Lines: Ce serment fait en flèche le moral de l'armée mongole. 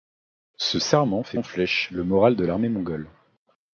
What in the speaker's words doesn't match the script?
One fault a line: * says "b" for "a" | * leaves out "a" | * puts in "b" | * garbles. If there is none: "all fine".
all fine